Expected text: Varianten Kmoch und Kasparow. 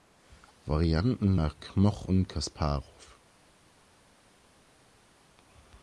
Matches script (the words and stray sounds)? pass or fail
fail